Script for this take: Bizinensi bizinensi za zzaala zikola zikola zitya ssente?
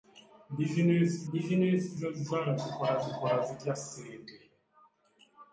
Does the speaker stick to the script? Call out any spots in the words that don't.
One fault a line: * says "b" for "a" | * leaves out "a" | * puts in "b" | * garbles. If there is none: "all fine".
all fine